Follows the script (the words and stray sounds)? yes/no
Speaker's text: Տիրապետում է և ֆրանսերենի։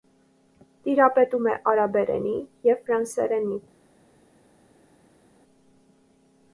no